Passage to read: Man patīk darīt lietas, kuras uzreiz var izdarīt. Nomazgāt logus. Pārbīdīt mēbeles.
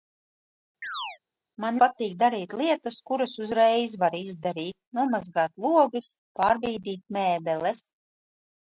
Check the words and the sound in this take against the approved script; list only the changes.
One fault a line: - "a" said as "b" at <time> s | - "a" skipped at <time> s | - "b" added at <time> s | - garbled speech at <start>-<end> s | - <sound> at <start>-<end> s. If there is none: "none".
- chirp at 0.8-1.2 s